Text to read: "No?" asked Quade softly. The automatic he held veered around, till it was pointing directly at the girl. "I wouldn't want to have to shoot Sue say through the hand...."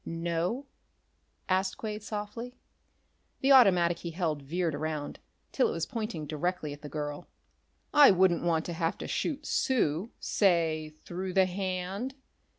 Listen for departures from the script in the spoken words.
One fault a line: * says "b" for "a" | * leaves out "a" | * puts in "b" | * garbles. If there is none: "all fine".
all fine